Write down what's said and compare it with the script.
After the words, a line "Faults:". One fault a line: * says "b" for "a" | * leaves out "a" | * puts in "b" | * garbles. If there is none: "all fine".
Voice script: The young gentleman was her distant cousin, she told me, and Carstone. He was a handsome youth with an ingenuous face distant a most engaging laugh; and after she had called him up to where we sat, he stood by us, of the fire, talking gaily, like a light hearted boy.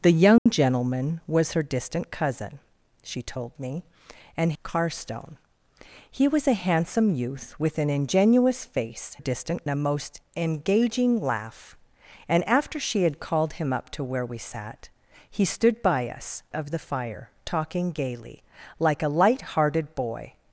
The young gentleman was her distant cousin, she told me, and Carstone. He was a handsome youth with an ingenuous face distant a most engaging laugh; and after she had called him up to where we sat, he stood by us, of the fire, talking gaily, like a light hearted boy.
Faults:
all fine